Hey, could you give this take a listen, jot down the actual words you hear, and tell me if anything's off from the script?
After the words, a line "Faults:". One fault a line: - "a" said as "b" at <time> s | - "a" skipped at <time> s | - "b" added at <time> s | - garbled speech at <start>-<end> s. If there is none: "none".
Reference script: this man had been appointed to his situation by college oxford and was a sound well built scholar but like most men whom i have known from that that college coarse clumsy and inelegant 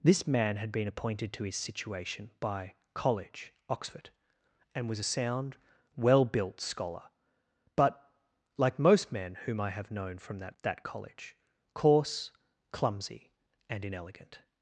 this man had been appointed to his situation by college oxford and was a sound well built scholar but like most men whom i have known from that that college coarse clumsy and inelegant
Faults:
none